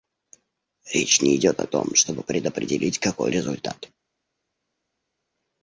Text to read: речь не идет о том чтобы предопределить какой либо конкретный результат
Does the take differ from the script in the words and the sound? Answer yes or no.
yes